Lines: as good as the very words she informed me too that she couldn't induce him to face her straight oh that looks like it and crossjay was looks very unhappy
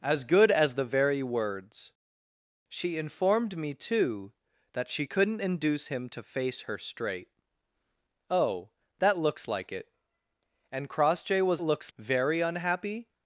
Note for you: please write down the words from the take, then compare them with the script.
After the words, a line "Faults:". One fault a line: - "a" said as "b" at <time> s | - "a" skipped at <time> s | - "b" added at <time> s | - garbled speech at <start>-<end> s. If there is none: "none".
as good as the very words she informed me too that she couldn't induce him to face her straight oh that looks like it and crossjay was looks very unhappy
Faults:
none